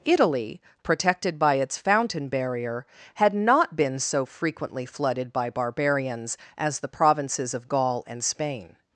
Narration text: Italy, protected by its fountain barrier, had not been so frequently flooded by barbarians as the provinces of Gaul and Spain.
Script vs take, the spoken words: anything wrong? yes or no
no